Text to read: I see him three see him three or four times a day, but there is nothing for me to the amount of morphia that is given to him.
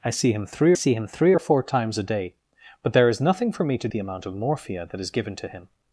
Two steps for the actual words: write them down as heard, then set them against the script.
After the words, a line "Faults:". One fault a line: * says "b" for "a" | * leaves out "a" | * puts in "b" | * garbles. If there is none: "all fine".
I see him three see him three or four times a day, but there is nothing for me to the amount of morphia that is given to him.
Faults:
all fine